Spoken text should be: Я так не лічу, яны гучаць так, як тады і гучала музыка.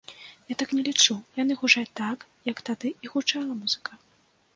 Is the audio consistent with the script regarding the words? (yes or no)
yes